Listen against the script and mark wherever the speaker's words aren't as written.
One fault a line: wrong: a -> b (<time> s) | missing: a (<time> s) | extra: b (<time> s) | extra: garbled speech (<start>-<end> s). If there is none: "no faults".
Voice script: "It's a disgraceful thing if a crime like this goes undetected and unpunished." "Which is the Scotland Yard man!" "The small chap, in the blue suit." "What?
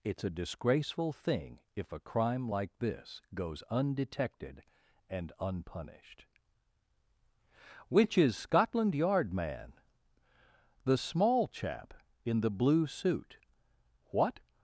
missing: the (8.4 s)